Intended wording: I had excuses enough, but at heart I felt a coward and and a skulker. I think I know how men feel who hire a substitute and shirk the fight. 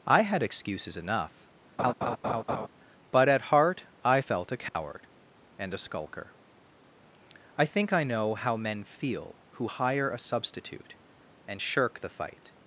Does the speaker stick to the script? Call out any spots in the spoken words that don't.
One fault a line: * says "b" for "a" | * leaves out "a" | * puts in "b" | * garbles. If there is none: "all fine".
* leaves out "and"